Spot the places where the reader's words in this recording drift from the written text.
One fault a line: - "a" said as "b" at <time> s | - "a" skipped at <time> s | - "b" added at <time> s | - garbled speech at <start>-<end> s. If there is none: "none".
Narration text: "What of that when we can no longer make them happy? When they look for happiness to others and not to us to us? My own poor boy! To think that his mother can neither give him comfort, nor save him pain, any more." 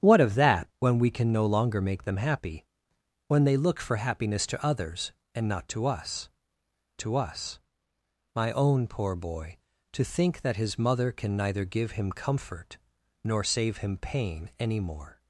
none